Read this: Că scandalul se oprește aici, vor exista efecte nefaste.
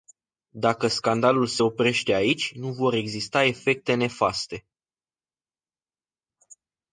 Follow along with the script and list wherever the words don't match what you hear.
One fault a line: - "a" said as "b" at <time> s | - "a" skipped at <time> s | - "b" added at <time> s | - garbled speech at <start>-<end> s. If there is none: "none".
- "Că" said as "Dacă" at 0.6 s
- "nu" added at 2.5 s